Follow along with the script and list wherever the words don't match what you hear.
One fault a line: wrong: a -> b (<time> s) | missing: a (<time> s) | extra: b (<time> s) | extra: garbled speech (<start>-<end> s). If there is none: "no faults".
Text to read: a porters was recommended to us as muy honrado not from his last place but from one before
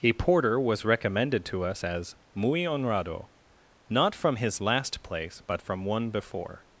wrong: porters -> porter (0.1 s)